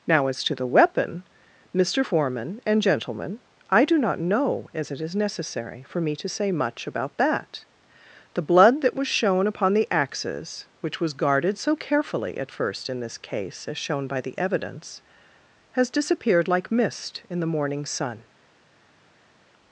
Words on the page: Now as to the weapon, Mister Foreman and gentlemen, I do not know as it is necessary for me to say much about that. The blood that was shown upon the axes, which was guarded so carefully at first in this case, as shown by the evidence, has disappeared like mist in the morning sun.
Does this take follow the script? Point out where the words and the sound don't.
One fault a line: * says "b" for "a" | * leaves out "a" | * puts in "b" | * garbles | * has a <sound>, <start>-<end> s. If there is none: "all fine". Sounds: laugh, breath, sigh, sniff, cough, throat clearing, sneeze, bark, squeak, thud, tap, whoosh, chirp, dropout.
all fine